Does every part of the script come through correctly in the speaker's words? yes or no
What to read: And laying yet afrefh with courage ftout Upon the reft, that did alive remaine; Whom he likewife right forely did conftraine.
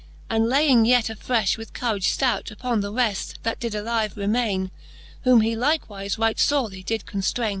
yes